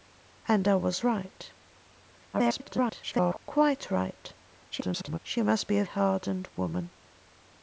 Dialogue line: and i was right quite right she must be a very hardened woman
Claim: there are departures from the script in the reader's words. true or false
true